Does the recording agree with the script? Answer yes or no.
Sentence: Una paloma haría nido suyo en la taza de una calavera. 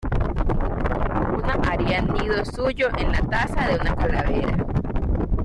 no